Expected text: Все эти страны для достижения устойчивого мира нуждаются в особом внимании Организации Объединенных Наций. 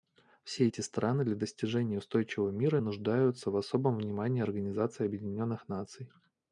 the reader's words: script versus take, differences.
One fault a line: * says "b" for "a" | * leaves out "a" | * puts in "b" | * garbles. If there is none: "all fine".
all fine